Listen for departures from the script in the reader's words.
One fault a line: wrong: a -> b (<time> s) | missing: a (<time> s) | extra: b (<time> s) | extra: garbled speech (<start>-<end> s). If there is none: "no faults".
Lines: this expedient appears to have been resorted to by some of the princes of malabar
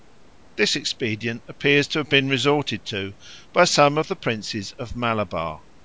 no faults